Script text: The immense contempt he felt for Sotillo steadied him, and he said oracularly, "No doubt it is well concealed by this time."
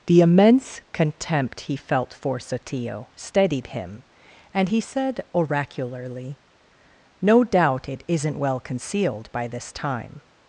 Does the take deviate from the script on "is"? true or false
true